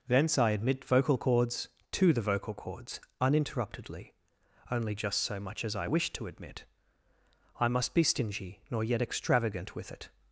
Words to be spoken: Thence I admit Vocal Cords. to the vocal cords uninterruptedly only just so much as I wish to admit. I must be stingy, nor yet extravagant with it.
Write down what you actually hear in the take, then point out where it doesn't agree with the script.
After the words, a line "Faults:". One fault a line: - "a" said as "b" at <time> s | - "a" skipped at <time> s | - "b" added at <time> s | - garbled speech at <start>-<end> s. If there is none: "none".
Thence I admit Vocal Cords. to the vocal cords uninterruptedly only just so much as I wish to admit. I must be stingy, nor yet extravagant with it.
Faults:
none